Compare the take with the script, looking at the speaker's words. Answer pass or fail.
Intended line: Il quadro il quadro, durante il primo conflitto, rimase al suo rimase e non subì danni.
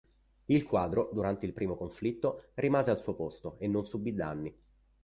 fail